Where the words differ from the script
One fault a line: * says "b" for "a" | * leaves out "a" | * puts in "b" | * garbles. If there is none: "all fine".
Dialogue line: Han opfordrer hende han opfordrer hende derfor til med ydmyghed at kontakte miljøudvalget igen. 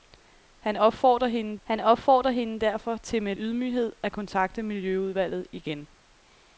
all fine